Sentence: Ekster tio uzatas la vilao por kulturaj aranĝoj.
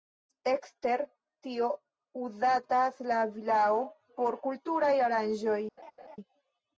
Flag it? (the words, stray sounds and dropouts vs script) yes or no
yes